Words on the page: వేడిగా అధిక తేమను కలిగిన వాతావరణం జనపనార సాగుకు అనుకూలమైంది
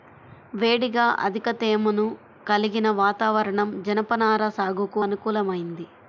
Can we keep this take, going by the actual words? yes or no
yes